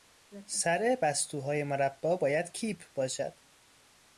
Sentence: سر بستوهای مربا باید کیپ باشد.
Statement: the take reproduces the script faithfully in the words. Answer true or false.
true